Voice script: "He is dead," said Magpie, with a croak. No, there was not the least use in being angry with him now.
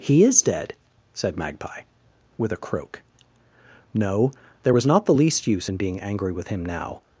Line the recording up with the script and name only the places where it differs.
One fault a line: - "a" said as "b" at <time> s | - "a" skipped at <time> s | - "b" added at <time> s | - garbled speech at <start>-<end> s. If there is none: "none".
none